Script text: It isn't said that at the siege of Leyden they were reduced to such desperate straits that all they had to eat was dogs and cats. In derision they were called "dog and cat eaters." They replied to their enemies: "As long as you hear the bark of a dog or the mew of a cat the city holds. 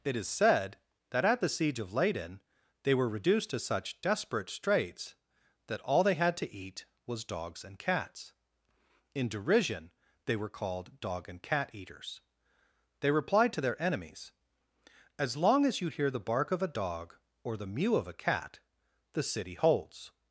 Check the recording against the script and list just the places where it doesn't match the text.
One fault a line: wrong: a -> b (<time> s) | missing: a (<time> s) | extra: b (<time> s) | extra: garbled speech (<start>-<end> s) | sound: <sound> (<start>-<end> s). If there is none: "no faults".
wrong: isn't -> is (0.1 s)